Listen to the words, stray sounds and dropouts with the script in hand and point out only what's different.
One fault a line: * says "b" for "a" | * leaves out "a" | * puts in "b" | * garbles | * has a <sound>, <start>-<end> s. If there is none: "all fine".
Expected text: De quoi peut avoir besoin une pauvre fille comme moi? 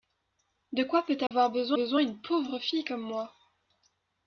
* has a dropout, 1.3-1.3 s
* puts in "besoin"